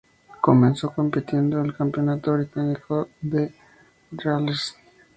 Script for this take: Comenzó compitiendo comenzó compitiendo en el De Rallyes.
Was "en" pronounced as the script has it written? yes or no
no